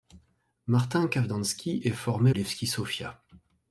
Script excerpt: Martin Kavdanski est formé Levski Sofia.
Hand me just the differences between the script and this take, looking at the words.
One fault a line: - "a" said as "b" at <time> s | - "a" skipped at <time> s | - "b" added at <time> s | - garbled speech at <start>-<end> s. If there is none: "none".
none